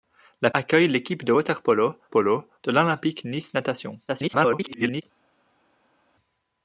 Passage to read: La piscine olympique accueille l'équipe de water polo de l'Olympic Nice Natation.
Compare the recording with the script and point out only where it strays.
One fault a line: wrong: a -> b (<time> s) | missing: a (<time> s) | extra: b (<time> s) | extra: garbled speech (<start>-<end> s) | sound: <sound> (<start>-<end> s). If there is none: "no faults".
missing: piscine olympique (0.5 s)
extra: polo (2.1 s)
extra: garbled speech (4.1-5.0 s)